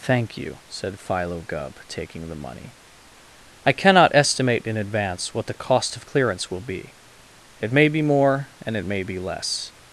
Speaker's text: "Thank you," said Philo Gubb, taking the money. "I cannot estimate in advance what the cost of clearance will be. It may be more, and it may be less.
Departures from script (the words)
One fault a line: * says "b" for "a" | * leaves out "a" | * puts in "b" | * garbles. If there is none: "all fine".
all fine